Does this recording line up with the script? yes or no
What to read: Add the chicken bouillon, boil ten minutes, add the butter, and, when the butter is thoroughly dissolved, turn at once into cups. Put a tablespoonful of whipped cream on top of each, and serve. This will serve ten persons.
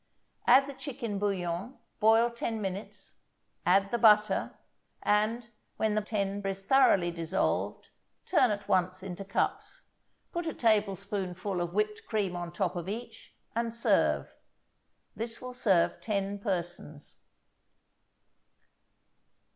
no